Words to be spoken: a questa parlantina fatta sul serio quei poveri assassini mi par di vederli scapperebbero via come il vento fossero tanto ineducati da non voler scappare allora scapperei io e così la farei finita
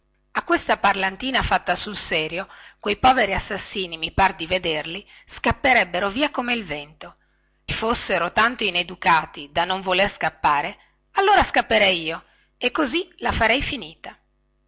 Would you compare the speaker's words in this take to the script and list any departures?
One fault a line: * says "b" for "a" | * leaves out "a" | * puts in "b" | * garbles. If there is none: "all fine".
all fine